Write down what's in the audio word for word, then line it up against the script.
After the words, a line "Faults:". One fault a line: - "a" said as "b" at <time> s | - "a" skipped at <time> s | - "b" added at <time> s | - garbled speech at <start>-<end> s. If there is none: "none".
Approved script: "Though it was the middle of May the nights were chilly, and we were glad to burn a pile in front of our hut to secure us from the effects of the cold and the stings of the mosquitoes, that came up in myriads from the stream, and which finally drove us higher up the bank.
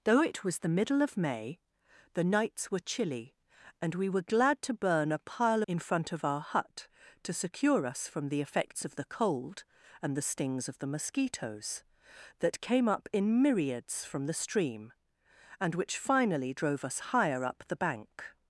"Though it was the middle of May the nights were chilly, and we were glad to burn a pile in front of our hut to secure us from the effects of the cold and the stings of the mosquitoes, that came up in myriads from the stream, and which finally drove us higher up the bank.
Faults:
none